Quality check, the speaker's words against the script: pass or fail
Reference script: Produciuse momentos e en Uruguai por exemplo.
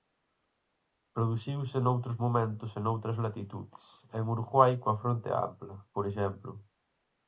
fail